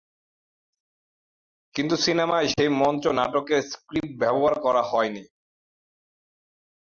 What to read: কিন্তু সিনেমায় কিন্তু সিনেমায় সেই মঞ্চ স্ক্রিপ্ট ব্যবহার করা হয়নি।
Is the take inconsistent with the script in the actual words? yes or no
yes